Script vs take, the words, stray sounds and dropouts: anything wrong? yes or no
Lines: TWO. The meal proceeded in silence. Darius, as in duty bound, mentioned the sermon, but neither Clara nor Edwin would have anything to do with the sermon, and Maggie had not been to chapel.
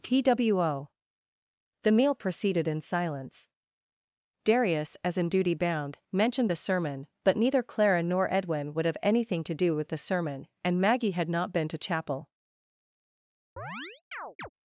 yes